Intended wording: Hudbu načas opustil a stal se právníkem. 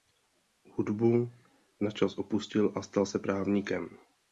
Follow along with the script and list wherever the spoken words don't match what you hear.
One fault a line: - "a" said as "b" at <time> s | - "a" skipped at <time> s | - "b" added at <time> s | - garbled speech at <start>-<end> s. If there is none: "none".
none